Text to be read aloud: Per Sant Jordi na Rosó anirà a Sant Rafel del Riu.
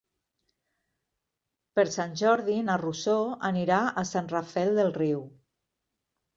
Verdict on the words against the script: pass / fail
pass